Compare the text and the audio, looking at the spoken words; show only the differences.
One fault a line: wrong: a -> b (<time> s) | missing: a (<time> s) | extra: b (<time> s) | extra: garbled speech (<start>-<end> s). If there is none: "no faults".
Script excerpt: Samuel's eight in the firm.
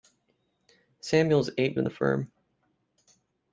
no faults